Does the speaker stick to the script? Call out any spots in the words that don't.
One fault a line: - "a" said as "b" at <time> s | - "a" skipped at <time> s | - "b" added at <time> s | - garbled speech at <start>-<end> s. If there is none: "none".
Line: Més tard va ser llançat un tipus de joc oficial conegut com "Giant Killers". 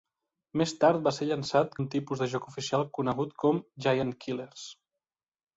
none